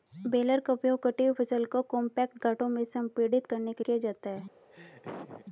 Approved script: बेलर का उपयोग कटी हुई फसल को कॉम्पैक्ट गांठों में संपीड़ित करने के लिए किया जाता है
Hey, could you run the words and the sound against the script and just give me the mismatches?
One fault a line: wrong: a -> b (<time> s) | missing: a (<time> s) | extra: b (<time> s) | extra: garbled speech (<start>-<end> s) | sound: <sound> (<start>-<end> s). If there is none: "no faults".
missing: लिए (3.8 s)
sound: laugh (4.7-5.5 s)